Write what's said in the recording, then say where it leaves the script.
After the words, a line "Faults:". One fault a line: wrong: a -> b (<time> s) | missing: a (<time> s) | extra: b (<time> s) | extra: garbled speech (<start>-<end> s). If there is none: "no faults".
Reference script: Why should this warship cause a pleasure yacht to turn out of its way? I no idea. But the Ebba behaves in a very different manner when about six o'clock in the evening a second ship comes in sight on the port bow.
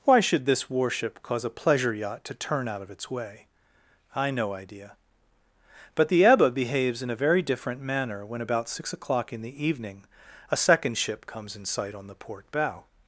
Why should this warship cause a pleasure yacht to turn out of its way? I no idea. But the Ebba behaves in a very different manner when about six o'clock in the evening a second ship comes in sight on the port bow.
Faults:
no faults